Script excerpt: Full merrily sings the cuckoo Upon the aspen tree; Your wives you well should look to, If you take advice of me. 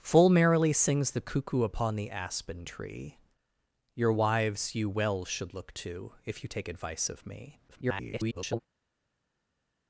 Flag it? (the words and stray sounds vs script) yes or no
yes